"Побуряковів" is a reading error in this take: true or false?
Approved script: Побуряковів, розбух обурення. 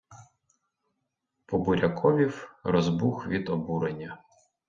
false